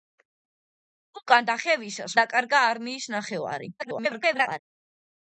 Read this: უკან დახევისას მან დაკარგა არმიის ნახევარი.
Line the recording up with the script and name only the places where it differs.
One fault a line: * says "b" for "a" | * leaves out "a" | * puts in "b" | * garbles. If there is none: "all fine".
* leaves out "მან"
* garbles